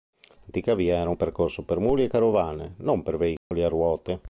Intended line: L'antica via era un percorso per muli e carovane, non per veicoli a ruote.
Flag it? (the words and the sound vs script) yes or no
yes